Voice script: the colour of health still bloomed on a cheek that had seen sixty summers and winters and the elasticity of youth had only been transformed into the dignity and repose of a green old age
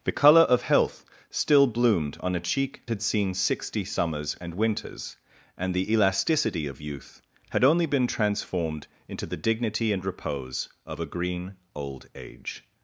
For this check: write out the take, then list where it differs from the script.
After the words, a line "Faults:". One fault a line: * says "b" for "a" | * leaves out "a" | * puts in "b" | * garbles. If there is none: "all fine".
the colour of health still bloomed on a cheek had seen sixty summers and winters and the elasticity of youth had only been transformed into the dignity and repose of a green old age
Faults:
* leaves out "that"